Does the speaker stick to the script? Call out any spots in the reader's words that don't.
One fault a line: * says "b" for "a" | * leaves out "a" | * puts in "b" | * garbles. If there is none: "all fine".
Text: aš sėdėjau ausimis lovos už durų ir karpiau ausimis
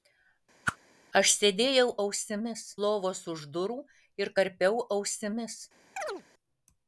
all fine